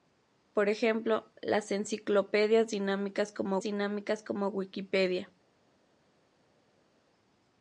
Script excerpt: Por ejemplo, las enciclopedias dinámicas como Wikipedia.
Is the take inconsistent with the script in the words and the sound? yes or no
yes